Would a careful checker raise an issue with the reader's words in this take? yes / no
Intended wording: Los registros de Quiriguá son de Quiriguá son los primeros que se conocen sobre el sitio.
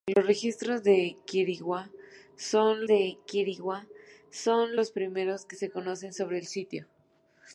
no